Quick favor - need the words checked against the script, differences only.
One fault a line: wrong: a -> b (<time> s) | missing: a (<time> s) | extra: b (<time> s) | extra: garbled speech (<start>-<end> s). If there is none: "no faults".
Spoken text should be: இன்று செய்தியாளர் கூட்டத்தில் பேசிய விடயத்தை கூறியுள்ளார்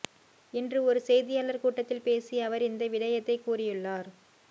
extra: ஒரு (0.8 s)
extra: அவர் இந்த (2.5 s)